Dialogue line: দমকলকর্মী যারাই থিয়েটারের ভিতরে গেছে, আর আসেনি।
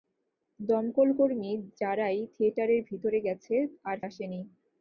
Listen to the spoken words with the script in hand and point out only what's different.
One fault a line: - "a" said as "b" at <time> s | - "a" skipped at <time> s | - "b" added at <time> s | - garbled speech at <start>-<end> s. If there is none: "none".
none